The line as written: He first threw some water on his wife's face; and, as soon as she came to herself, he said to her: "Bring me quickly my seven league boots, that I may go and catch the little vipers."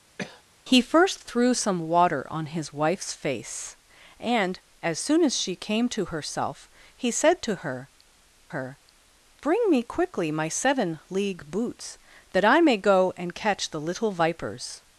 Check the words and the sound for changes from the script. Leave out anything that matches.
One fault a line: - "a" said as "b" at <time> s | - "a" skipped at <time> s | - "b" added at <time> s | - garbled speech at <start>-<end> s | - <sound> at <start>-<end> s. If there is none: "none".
- cough at 0.2-0.4 s
- "her" added at 8.5 s